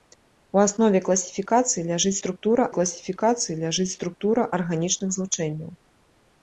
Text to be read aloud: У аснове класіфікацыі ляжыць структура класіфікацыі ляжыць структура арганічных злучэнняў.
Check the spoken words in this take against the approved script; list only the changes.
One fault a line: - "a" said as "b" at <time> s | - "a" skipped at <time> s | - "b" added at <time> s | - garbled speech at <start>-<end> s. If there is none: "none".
none